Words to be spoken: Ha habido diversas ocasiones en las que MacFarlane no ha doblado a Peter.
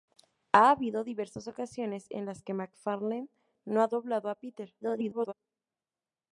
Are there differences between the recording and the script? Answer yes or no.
yes